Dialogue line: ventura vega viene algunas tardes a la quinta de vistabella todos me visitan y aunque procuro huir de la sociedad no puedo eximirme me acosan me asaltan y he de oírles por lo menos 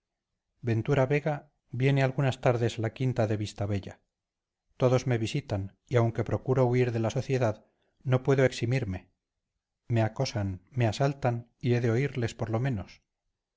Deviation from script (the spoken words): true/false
false